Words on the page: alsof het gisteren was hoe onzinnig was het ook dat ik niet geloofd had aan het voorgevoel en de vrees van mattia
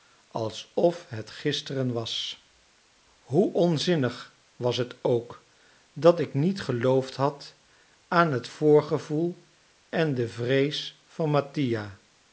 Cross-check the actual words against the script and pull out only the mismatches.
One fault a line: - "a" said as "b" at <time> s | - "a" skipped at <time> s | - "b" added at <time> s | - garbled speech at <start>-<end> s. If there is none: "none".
none